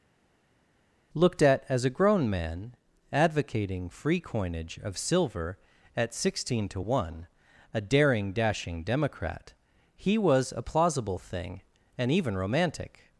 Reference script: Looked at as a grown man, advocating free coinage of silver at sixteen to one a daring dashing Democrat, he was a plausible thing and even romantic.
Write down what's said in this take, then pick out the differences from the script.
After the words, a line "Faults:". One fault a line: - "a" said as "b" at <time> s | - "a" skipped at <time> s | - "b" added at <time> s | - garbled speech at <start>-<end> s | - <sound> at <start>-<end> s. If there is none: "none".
Looked at as a grown man, advocating free coinage of silver at sixteen to one a daring dashing Democrat, he was a plausible thing and even romantic.
Faults:
none